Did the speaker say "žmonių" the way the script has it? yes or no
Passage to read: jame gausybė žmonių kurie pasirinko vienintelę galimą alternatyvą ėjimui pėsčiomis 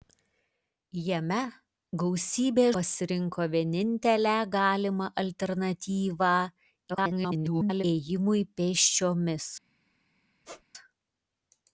no